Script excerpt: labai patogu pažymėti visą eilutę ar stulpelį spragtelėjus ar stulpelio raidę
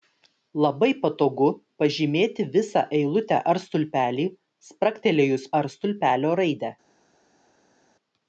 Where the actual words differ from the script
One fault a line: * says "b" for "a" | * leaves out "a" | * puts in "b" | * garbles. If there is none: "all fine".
all fine